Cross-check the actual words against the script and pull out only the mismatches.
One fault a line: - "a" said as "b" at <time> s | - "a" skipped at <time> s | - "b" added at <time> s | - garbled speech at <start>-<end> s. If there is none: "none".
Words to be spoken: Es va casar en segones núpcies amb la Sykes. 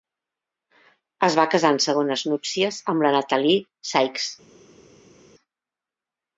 - "Natalie" added at 3.2 s